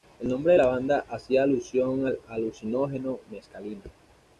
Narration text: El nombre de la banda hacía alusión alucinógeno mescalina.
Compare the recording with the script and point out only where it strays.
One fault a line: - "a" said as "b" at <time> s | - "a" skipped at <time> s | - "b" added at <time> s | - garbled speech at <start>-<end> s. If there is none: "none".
- "al" added at 2.0 s